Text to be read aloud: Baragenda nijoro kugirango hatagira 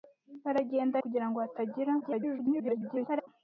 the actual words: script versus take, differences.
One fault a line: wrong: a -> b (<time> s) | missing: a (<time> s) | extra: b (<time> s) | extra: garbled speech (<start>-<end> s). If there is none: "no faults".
missing: nijoro (1.0 s)
extra: garbled speech (2.0-3.3 s)